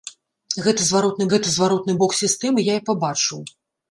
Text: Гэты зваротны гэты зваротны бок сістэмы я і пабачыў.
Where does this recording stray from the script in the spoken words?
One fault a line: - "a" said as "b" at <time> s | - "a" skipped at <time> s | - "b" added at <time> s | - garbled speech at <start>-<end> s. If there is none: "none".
none